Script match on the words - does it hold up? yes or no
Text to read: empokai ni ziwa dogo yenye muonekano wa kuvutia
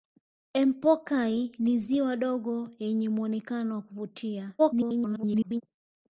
no